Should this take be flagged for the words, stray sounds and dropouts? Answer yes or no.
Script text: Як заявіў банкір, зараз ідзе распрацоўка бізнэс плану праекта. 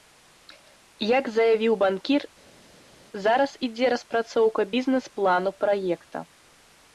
no